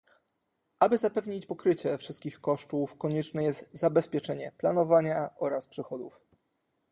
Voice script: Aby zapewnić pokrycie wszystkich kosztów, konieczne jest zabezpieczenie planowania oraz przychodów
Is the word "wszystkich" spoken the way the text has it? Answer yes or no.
yes